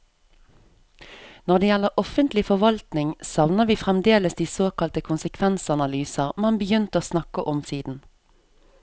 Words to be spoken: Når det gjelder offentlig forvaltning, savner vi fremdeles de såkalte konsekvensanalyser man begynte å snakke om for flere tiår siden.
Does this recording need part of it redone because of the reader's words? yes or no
yes